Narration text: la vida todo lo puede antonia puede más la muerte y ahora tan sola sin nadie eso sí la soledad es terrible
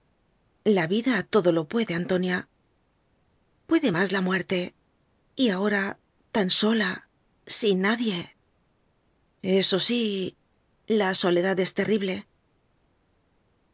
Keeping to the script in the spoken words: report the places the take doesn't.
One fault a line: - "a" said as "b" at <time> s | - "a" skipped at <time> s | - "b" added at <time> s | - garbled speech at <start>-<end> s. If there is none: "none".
none